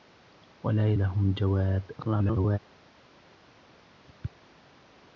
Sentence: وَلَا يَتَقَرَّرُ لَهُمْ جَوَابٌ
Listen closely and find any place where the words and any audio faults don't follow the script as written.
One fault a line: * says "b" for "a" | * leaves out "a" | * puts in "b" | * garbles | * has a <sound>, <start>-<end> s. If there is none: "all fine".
* leaves out "يَتَقَرَّرُ"
* garbles